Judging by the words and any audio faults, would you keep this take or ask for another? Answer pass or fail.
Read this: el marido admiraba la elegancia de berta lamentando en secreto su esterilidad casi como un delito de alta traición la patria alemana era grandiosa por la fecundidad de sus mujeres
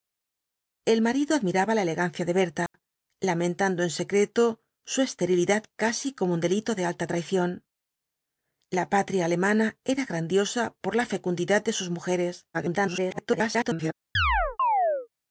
fail